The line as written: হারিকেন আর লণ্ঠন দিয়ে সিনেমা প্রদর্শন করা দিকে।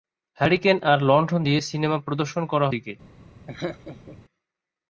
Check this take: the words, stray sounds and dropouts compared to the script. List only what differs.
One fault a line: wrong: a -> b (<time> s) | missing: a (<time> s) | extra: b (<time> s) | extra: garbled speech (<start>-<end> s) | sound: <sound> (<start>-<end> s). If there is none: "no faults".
sound: laugh (3.5-4.2 s)